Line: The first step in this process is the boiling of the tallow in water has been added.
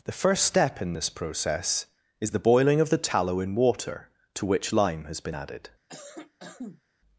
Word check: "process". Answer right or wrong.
right